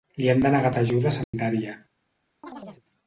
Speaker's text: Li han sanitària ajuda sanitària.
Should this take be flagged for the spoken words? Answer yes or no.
yes